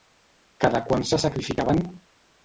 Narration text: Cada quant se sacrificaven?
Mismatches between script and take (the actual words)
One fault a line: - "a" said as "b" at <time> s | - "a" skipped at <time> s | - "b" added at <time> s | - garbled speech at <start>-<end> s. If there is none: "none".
none